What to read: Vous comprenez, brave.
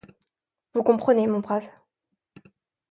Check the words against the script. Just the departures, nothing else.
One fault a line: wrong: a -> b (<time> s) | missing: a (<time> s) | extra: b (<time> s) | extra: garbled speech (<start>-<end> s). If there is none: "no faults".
extra: mon (1.3 s)